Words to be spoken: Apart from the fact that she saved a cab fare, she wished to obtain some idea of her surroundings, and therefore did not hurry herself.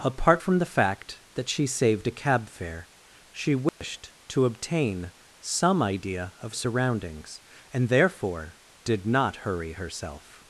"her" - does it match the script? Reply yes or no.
no